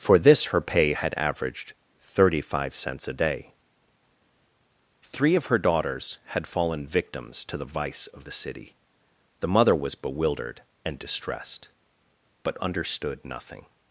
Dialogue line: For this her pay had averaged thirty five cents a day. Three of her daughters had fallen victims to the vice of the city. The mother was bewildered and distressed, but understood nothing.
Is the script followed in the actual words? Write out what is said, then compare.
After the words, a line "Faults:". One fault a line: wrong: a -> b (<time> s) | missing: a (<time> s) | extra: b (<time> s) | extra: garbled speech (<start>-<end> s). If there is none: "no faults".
For this her pay had averaged thirty five cents a day. Three of her daughters had fallen victims to the vice of the city. The mother was bewildered and distressed, but understood nothing.
Faults:
no faults